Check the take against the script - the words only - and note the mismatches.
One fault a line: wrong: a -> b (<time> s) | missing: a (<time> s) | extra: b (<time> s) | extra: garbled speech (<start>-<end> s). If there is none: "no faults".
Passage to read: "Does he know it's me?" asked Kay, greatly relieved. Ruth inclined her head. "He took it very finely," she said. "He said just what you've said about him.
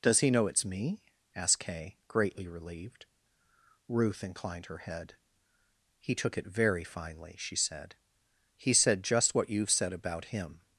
no faults